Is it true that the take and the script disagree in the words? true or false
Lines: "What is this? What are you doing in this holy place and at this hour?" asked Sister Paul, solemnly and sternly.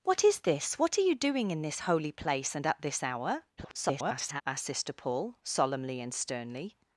true